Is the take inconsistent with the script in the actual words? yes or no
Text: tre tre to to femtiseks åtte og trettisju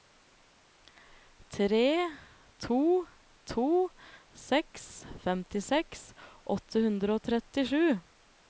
yes